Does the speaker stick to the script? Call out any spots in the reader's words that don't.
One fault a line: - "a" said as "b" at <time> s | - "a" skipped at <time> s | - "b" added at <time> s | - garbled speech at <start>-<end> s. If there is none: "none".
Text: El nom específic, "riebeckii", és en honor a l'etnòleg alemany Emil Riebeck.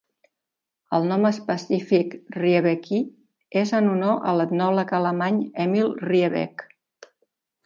none